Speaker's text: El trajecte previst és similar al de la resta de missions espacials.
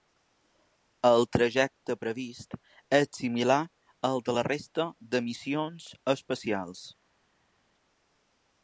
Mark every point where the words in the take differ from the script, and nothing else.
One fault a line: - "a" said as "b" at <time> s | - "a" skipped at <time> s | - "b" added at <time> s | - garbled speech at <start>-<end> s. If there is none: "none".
none